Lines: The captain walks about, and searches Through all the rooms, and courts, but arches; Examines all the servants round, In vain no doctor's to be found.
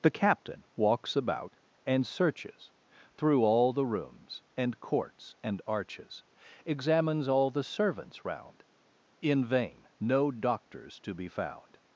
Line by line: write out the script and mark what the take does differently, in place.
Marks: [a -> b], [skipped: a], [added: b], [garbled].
The captain walks about, and searches Through all the rooms, and courts, [but -> and] arches; Examines all the servants round, In vain no doctor's to be found.